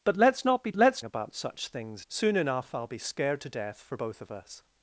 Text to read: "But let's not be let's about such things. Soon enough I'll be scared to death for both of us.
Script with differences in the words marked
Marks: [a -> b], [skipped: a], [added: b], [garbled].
"But let's not be let's about such things. Soon enough I'll be scared to death for both of us.